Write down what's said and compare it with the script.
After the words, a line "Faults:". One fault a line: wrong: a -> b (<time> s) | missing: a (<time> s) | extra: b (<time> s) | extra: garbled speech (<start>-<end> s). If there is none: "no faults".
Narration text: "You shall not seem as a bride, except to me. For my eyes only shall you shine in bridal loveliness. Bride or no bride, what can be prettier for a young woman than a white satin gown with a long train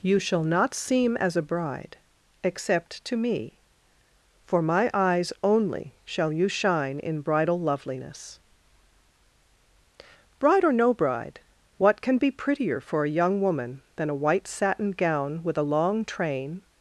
"You shall not seem as a bride, except to me. For my eyes only shall you shine in bridal loveliness. Bride or no bride, what can be prettier for a young woman than a white satin gown with a long train
Faults:
no faults